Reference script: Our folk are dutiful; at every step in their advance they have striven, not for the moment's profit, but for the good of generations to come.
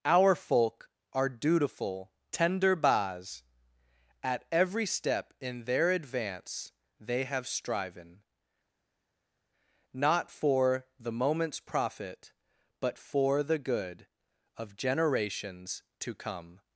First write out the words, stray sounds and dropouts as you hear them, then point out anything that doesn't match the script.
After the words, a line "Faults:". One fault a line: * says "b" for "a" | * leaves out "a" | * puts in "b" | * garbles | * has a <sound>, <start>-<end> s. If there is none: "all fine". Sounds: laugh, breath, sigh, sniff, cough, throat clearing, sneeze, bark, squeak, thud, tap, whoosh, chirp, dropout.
Our folk are dutiful; tender bas at every step in their advance they have striven, not for the moment's profit, but for the good of generations to come.
Faults:
* puts in "tender bas"